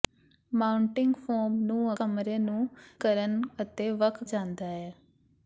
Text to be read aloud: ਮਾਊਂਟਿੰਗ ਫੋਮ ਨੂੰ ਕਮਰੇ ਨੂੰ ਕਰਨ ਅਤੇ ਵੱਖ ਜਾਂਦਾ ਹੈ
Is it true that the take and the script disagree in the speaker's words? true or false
false